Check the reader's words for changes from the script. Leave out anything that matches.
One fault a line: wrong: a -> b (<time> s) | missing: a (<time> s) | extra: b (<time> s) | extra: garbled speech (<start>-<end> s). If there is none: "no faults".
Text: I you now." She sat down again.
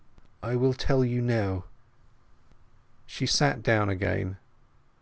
extra: will tell (0.6 s)